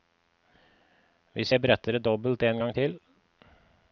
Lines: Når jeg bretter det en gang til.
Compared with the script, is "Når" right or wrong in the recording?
wrong